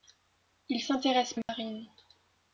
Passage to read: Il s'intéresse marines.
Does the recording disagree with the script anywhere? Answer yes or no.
no